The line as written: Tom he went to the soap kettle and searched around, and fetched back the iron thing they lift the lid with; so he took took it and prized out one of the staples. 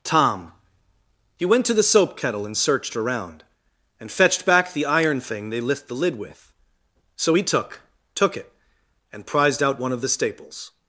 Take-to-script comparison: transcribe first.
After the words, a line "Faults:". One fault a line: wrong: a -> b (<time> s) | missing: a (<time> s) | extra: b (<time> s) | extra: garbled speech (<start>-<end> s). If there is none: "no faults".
Tom he went to the soap kettle and searched around, and fetched back the iron thing they lift the lid with; so he took took it and prized out one of the staples.
Faults:
no faults